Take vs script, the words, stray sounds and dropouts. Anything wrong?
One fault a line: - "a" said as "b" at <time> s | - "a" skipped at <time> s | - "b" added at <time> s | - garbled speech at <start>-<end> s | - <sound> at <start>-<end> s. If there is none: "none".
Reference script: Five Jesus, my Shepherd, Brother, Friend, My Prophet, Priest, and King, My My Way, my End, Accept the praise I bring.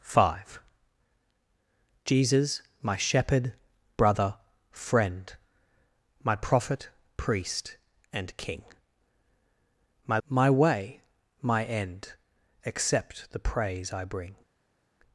none